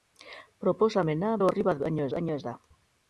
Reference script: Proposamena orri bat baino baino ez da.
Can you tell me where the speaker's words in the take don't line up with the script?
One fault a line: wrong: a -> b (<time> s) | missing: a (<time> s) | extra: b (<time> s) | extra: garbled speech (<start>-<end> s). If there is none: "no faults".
no faults